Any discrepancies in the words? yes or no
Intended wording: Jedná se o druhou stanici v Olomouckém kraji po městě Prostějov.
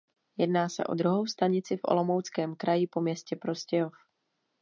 no